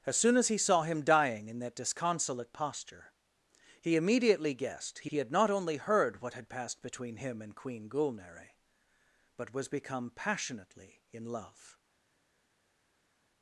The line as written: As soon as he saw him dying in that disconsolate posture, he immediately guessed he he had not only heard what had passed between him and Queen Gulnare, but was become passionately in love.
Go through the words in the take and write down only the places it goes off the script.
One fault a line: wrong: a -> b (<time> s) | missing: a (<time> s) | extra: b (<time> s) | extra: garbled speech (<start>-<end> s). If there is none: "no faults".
no faults